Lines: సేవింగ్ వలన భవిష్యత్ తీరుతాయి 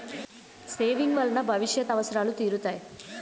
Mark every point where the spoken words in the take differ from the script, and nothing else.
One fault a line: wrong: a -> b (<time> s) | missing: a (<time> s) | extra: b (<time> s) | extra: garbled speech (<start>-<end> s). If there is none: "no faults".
extra: అవసరాలు (1.9 s)